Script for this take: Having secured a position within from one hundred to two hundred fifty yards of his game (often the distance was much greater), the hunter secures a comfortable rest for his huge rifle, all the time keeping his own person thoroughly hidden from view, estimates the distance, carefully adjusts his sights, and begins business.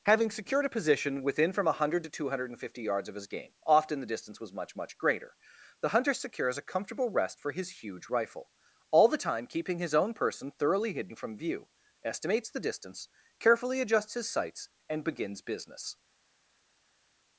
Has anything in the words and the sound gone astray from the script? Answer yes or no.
yes